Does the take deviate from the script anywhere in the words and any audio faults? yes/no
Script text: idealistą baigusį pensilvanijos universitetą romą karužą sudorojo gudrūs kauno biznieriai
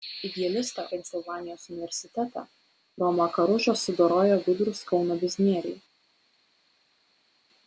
yes